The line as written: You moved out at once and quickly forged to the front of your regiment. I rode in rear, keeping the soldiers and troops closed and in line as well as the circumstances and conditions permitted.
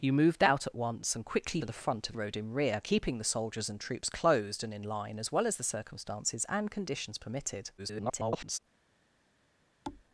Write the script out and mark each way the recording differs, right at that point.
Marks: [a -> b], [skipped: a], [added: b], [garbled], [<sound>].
You moved out at once and quickly [skipped: forged] to the front of [skipped: your regiment. I] rode in rear, keeping the soldiers and troops closed and in line as well as the circumstances and conditions permitted. [garbled] [thud]